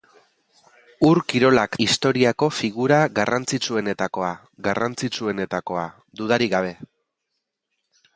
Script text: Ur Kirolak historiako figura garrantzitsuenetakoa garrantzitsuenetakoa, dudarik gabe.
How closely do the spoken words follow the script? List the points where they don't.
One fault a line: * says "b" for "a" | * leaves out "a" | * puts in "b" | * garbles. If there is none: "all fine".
all fine